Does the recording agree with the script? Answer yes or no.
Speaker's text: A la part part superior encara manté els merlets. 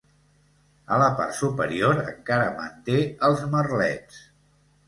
no